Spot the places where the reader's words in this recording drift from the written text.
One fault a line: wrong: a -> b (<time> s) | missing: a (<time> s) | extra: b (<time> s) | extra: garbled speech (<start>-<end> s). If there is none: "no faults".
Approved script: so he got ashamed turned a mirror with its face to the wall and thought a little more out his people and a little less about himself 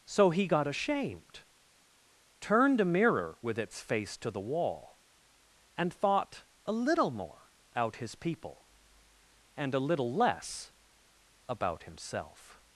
no faults